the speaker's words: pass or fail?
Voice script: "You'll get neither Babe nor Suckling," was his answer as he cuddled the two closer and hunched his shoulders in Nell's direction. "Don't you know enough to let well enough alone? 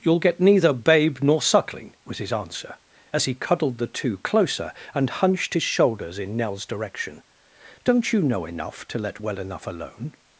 pass